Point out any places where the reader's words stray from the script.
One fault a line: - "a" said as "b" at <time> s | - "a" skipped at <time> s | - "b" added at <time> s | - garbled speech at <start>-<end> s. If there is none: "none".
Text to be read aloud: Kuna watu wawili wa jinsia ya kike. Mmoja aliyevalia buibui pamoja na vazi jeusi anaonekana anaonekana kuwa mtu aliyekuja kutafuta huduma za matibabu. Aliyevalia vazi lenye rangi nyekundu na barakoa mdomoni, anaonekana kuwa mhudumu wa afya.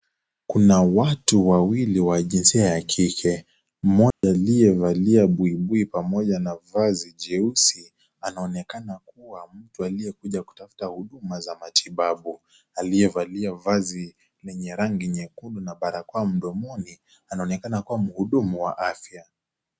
- "anaonekana" skipped at 9.0 s